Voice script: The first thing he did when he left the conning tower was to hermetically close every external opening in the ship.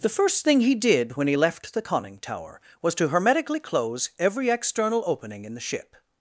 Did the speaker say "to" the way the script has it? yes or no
yes